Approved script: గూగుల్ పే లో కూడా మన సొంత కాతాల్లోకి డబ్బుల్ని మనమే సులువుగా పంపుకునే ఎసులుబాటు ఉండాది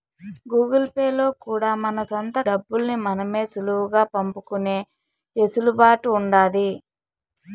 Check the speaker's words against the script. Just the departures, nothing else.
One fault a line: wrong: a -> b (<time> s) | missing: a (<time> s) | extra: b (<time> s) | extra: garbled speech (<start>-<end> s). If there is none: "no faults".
missing: కాతాల్లోకి (2.4 s)